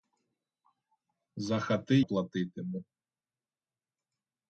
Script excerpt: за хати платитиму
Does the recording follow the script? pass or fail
pass